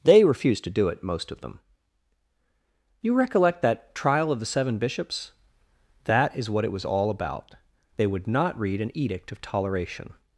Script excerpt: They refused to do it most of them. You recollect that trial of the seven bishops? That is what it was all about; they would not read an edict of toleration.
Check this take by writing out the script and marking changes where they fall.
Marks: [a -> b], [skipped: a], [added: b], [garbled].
They refused to do it most of them. You recollect that trial of the seven bishops? That is what it was all about; they would not read an edict of toleration.